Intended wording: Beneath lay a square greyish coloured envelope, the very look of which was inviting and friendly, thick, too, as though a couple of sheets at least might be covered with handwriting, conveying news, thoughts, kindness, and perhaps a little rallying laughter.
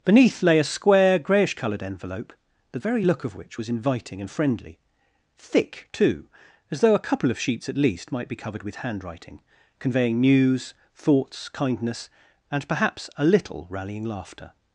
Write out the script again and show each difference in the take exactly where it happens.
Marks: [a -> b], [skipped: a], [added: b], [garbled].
Beneath lay a square greyish coloured envelope, the very look of which was inviting and friendly, thick, too, as though a couple of sheets at least might be covered with handwriting, conveying news, thoughts, kindness, and perhaps a little rallying laughter.